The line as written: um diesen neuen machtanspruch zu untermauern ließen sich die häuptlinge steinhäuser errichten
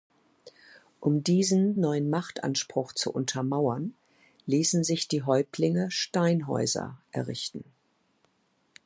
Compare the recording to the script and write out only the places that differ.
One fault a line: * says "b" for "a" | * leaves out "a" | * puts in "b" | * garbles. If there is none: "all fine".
all fine